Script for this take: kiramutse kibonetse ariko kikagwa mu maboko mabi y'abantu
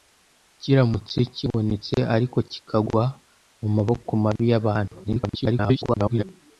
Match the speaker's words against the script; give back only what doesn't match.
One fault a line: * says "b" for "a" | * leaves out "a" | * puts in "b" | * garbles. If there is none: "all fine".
* garbles